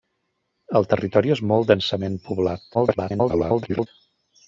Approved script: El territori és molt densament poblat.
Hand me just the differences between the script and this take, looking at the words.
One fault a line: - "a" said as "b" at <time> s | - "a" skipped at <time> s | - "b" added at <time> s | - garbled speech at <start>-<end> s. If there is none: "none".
- garbled speech at 2.7-3.9 s